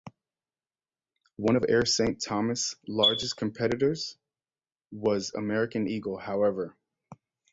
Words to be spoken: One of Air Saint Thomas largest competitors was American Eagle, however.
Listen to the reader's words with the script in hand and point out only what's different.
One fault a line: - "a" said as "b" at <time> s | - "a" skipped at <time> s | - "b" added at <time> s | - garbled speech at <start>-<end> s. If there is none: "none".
none